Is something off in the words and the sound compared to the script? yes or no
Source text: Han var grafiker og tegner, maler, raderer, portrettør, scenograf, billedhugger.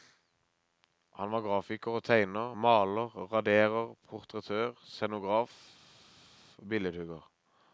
no